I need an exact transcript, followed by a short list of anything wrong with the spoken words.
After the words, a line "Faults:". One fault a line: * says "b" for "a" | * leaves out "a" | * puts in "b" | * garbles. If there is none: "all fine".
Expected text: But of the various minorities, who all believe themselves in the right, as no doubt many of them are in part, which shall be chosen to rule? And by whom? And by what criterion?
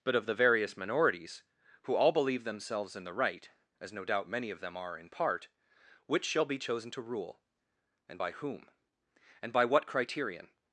But of the various minorities, who all believe themselves in the right, as no doubt many of them are in part, which shall be chosen to rule? And by whom? And by what criterion?
Faults:
all fine